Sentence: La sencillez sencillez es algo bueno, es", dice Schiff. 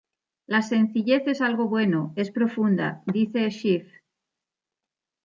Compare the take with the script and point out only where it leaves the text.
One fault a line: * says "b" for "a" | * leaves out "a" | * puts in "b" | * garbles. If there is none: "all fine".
* leaves out "sencillez"
* puts in "profunda"